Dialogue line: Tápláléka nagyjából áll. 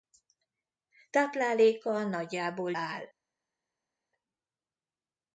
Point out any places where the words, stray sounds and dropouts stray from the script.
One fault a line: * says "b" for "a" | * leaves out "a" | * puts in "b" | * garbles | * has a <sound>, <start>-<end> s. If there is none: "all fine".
all fine